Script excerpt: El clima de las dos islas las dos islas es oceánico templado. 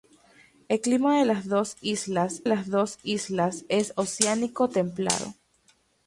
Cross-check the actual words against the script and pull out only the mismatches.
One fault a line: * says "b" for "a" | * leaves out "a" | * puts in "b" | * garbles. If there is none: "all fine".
all fine